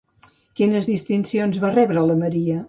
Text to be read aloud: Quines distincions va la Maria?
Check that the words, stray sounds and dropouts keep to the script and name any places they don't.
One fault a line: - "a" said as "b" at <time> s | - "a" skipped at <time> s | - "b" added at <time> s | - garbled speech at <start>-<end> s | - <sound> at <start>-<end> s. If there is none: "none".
- "rebre" added at 1.8 s